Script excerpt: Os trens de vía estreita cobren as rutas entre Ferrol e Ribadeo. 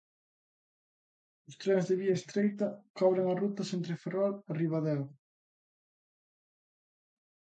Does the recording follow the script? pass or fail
pass